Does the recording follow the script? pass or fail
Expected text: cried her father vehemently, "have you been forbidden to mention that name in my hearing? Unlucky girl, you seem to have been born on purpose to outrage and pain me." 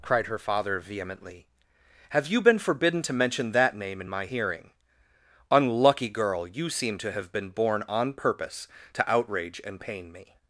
pass